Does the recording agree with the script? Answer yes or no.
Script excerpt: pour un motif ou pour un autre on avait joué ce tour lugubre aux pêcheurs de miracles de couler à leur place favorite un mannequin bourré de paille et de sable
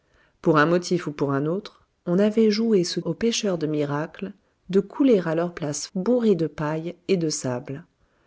no